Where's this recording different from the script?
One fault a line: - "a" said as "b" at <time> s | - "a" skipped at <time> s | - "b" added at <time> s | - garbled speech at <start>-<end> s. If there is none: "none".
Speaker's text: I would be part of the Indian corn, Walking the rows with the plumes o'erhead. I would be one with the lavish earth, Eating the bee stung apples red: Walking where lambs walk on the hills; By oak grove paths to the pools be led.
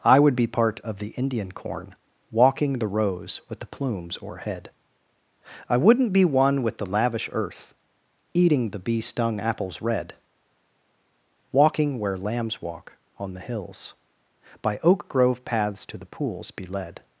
- "would" said as "wouldn't" at 5.8 s